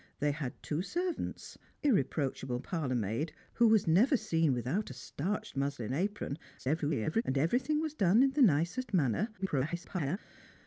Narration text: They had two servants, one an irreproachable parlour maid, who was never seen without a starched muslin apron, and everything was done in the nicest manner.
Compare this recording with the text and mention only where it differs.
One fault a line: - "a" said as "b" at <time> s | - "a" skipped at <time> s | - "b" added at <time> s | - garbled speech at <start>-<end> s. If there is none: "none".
- "one an" skipped at 1.6 s
- garbled speech at 6.6-7.2 s
- garbled speech at 9.4-10.2 s